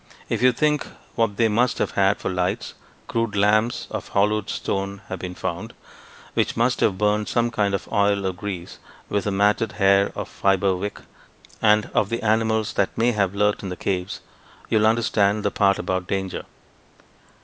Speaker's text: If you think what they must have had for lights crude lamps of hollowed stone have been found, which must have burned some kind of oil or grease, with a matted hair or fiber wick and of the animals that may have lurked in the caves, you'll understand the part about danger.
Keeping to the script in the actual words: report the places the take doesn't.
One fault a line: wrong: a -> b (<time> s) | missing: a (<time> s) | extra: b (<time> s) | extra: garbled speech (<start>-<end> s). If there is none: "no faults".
no faults